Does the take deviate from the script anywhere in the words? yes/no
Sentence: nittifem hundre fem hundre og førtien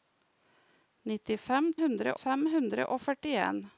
no